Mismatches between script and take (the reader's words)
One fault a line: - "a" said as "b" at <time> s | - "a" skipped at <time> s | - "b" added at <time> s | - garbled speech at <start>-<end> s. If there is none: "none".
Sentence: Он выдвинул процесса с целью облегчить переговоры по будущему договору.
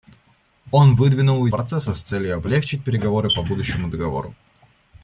none